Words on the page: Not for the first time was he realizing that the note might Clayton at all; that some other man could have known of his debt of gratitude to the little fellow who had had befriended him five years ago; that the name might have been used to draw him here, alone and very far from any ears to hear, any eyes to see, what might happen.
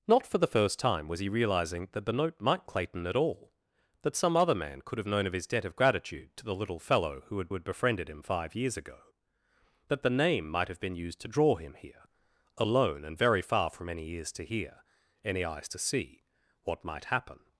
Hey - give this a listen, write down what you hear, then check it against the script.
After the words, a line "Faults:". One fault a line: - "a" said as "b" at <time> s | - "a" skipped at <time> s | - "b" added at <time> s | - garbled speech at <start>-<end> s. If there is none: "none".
Not for the first time was he realizing that the note might Clayton at all; that some other man could have known of his debt of gratitude to the little fellow who had had befriended him five years ago; that the name might have been used to draw him here, alone and very far from any ears to hear, any eyes to see, what might happen.
Faults:
none